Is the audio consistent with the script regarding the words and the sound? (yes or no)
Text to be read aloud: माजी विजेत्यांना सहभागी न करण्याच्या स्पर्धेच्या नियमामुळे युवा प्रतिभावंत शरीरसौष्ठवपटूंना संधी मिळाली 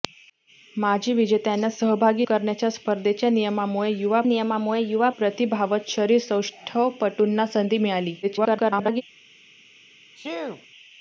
no